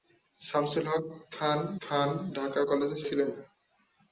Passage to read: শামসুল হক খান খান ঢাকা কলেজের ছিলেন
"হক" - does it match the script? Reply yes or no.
yes